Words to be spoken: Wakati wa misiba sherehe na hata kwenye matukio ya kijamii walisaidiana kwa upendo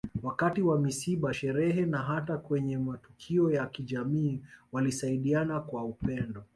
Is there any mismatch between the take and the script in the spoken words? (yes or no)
no